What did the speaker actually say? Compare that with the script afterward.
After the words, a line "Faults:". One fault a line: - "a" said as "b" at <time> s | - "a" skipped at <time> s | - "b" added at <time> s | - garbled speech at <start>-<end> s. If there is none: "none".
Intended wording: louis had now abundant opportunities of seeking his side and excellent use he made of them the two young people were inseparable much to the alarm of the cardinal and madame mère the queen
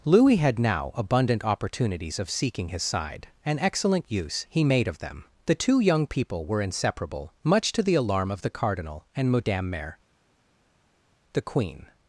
louis had now abundant opportunities of seeking his side and excellent use he made of them the two young people were inseparable much to the alarm of the cardinal and madame mère the queen
Faults:
none